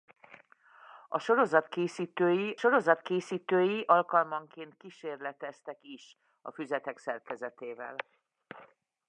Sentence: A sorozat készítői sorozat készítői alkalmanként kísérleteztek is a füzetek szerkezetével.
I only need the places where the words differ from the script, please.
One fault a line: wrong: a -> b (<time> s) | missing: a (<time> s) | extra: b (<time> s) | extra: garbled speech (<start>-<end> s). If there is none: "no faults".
no faults